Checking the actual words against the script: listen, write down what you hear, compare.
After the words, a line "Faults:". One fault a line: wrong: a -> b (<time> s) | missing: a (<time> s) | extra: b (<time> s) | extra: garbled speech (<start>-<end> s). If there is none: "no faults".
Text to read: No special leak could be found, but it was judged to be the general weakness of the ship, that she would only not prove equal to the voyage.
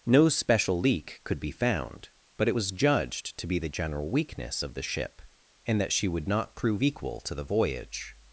No special leak could be found, but it was judged to be the general weakness of the ship, and that she would not prove equal to the voyage.
Faults:
extra: and (5.7 s)
missing: only (6.3 s)